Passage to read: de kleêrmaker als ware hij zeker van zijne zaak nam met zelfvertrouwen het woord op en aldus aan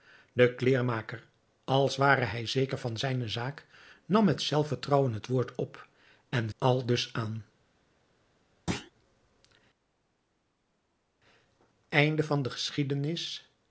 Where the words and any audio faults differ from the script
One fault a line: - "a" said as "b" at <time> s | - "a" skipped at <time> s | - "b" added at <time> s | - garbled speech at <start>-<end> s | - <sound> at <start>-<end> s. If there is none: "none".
- thud at 8.7-8.9 s